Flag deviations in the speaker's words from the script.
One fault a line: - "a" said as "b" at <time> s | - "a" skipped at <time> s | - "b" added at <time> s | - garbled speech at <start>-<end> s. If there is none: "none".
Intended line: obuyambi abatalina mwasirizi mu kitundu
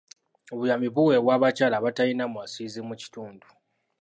- "buweebwa abakyala" added at 0.9 s